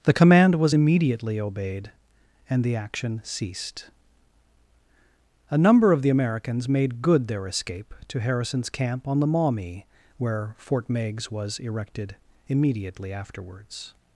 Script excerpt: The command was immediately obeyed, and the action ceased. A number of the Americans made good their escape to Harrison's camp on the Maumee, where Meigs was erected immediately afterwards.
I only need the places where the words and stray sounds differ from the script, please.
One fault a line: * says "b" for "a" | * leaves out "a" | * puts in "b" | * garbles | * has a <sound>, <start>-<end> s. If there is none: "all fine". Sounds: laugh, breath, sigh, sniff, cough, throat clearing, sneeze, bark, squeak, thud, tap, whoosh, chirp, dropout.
* puts in "Fort"